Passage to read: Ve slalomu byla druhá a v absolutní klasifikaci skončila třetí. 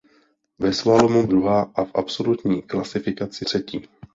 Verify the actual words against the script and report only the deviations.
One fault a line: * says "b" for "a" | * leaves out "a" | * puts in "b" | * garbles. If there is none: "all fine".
* leaves out "byla"
* leaves out "skončila"